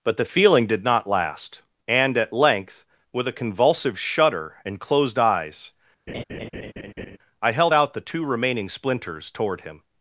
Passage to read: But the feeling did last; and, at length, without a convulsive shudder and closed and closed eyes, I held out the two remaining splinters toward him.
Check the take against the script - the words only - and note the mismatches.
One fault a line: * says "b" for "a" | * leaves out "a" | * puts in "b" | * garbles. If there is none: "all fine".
* puts in "not"
* says "with" for "without"
* leaves out "and closed"